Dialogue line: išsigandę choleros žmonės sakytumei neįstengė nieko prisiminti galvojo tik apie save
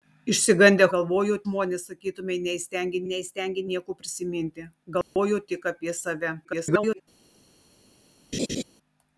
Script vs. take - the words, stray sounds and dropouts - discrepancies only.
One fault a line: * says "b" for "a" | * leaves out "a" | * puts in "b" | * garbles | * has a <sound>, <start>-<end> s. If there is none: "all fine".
* says "galvojo" for "choleros"
* puts in "neįstengė"
* has a dropout, 5.0-5.2 s
* garbles
* has a laugh, 8.3-8.6 s